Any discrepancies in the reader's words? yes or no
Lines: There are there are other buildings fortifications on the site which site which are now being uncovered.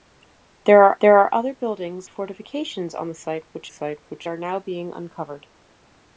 no